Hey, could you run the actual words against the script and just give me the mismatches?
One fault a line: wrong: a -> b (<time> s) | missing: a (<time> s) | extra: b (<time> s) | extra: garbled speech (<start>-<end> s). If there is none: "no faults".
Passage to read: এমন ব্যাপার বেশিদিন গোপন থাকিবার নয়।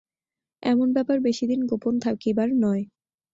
no faults